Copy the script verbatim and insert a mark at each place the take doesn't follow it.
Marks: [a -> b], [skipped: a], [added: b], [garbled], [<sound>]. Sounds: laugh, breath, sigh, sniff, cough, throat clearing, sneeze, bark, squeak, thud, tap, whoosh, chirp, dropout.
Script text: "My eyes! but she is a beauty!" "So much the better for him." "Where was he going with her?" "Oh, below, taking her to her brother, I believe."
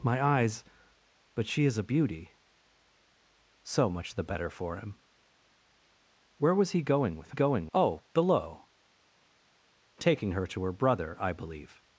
"My eyes! but she is a beauty!" "So much the better for him." "Where was he going with [her?" -> going] "Oh, below, taking her to her brother, I believe."